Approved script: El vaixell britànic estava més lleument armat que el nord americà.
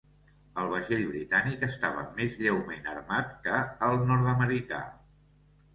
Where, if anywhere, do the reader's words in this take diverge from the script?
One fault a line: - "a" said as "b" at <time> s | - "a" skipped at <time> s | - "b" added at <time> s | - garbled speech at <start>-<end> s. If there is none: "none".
none